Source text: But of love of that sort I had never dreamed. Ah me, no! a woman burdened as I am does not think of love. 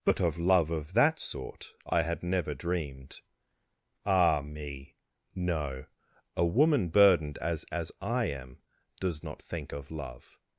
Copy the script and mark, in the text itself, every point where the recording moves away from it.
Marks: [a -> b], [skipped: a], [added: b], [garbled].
But of love of that sort I had never dreamed. Ah me, no! a woman burdened as [added: as] I am does not think of love.